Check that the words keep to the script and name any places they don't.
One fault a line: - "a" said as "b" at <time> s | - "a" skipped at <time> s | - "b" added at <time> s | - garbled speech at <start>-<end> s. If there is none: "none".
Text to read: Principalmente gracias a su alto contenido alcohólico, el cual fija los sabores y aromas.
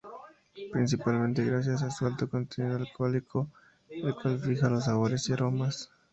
none